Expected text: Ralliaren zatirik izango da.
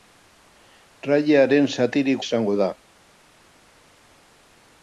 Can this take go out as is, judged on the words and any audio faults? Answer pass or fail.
pass